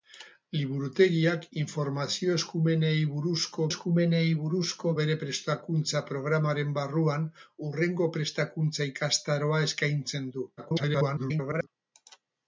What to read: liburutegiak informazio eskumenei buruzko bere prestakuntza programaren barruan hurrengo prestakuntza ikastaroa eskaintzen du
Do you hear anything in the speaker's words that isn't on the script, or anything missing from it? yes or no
yes